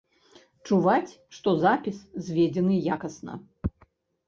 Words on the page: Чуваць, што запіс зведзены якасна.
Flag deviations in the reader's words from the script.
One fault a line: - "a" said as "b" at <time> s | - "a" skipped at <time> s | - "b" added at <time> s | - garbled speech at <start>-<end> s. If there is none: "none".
none